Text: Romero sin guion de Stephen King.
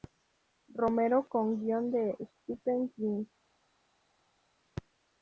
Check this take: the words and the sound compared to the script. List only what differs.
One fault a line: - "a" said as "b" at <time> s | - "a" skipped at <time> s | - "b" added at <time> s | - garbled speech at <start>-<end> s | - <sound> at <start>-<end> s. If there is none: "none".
- "sin" said as "con" at 1.3 s